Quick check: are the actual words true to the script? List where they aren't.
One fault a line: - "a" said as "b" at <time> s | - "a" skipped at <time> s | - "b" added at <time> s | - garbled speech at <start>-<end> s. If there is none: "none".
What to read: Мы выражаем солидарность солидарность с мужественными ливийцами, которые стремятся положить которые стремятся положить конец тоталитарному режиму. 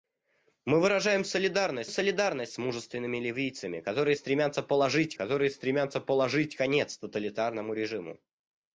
none